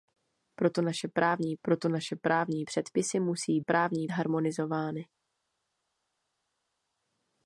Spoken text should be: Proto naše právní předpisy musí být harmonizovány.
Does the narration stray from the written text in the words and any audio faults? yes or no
yes